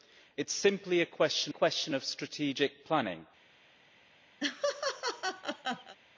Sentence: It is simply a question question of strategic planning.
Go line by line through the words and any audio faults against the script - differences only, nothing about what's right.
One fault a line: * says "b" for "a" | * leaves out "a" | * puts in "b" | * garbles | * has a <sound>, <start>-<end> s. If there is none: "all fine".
* has a laugh, 4.4-6.0 s